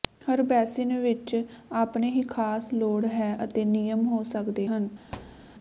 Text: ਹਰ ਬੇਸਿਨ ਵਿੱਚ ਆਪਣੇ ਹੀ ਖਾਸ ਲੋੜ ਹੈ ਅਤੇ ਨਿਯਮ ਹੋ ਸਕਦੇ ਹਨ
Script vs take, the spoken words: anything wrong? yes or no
no